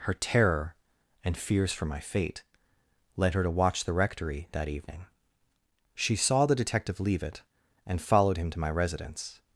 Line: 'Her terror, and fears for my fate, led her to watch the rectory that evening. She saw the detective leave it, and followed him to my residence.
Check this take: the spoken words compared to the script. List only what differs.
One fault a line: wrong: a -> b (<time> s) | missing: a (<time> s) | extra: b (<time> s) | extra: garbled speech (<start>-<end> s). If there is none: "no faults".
no faults